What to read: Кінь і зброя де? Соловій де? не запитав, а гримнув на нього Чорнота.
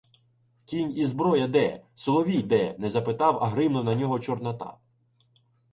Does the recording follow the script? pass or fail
pass